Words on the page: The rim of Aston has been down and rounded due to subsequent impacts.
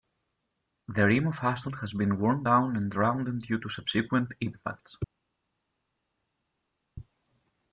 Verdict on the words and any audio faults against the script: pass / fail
fail